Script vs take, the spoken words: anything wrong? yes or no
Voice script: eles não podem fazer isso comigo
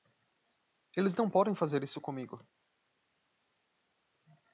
no